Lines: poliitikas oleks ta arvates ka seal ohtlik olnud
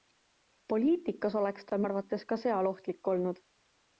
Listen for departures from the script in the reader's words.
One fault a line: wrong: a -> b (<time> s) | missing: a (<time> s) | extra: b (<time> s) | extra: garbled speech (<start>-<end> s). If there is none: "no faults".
no faults